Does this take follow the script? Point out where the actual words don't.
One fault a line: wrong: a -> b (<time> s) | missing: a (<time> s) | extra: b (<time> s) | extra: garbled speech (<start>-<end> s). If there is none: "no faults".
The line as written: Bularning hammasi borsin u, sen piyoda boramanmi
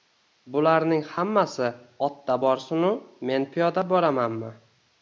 extra: otda (2.1 s)
wrong: sen -> men (3.3 s)